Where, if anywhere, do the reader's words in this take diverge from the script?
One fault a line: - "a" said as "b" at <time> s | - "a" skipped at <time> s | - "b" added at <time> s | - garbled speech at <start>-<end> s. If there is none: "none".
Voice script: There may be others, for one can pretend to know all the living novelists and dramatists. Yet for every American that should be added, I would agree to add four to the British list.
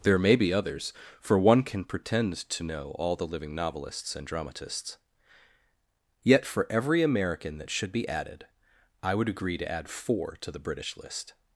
none